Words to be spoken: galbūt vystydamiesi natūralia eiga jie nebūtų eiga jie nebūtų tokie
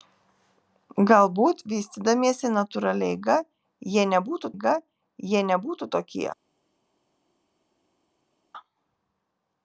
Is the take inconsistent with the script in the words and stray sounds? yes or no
no